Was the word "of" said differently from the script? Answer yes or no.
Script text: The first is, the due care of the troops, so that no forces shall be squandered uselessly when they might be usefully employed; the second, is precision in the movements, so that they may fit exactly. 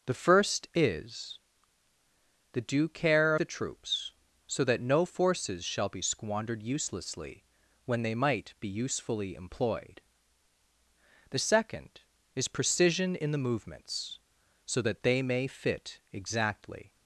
yes